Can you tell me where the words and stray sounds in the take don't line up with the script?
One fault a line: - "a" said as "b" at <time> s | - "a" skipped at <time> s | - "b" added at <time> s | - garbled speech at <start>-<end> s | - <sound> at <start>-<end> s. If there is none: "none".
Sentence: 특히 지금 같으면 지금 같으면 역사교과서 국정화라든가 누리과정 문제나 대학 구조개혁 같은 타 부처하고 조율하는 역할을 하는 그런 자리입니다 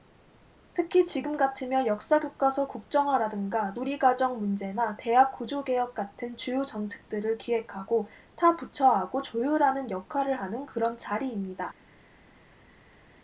- "지금 같으면" skipped at 1.9 s
- "주요 정책들을 기획하고" added at 6.4 s